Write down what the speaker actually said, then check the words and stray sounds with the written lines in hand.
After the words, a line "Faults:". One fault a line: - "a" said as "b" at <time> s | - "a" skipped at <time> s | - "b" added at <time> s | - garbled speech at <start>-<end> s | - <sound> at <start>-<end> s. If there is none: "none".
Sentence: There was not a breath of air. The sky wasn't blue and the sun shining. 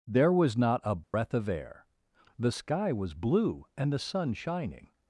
There was not a breath of air. The sky was blue and the sun shining.
Faults:
- dropout at 1.0-1.1 s
- "wasn't" said as "was" at 2.9 s